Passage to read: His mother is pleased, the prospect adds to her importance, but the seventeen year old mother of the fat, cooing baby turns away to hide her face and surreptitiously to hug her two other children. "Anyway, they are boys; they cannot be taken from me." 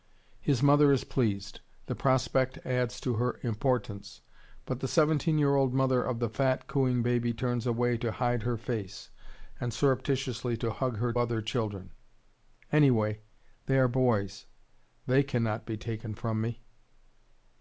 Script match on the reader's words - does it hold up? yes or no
no